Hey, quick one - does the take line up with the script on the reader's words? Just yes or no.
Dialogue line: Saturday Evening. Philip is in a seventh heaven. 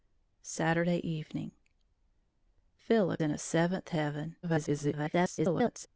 no